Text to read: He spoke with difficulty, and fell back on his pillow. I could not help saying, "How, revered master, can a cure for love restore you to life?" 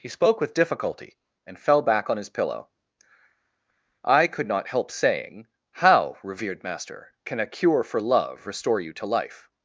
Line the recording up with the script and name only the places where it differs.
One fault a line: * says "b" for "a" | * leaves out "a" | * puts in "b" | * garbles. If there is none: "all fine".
all fine